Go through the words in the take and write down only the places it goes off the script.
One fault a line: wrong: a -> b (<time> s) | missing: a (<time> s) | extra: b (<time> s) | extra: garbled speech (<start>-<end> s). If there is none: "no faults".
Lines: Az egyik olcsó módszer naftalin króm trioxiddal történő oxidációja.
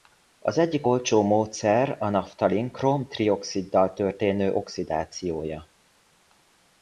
extra: a (2.0 s)